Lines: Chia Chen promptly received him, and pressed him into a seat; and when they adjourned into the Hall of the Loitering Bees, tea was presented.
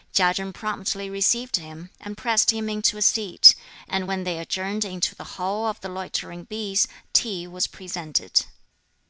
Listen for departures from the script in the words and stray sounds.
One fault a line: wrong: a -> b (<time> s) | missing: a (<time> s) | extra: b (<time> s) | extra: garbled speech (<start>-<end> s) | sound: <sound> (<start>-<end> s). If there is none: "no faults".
no faults